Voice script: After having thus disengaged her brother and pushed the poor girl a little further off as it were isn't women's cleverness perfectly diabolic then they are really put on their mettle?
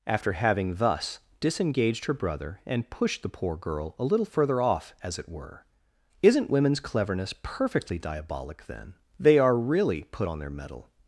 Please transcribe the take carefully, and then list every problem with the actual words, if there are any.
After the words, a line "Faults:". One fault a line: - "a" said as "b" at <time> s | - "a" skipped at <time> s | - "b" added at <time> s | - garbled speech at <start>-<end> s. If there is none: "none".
After having thus disengaged her brother and pushed the poor girl a little further off as it were isn't women's cleverness perfectly diabolic then they are really put on their mettle?
Faults:
none